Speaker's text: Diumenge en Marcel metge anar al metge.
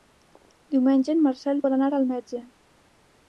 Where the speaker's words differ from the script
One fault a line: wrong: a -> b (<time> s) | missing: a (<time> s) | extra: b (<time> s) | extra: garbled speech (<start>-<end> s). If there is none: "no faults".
wrong: metge -> vol (1.6 s)